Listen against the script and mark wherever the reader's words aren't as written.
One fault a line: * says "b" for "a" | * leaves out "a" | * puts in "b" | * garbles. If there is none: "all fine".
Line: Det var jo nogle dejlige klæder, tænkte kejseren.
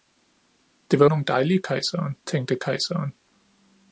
* leaves out "jo"
* says "kejseren" for "klæder"